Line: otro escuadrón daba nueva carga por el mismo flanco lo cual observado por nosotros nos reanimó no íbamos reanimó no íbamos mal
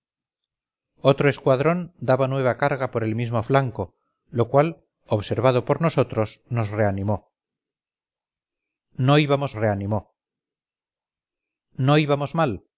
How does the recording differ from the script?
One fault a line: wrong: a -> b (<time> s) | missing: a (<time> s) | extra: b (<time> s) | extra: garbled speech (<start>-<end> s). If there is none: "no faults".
no faults